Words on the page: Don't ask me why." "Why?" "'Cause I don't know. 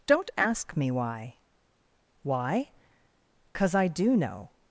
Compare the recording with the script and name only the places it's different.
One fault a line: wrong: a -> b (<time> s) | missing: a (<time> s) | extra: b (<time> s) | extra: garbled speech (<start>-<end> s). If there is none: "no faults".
wrong: don't -> do (3.9 s)